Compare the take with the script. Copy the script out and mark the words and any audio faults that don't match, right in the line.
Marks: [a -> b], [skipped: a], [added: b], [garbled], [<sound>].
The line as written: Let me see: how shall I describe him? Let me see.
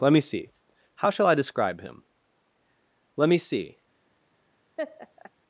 Let me see: how shall I describe him? Let me see. [laugh]